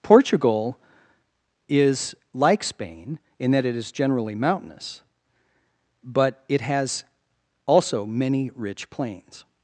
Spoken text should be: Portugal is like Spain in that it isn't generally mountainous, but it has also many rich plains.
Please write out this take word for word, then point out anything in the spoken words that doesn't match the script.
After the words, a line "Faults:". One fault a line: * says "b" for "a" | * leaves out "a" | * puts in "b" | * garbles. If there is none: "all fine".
Portugal is like Spain in that it is generally mountainous, but it has also many rich plains.
Faults:
* says "is" for "isn't"